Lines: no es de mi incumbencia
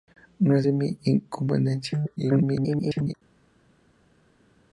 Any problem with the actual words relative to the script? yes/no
yes